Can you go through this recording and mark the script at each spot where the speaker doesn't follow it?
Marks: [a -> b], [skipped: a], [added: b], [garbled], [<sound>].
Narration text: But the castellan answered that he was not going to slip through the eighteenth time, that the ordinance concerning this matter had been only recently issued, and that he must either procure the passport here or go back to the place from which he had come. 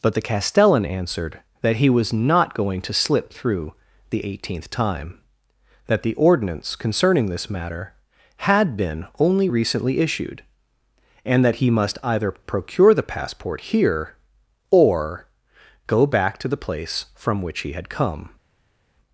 But the castellan answered that he was not going to slip through the eighteenth time, that the ordinance concerning this matter had been only recently issued, and that he must either procure the passport here or go back to the place from which he had come.